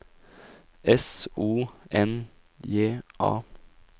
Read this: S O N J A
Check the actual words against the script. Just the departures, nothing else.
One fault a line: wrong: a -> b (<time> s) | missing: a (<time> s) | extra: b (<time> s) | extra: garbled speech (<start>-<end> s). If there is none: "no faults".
no faults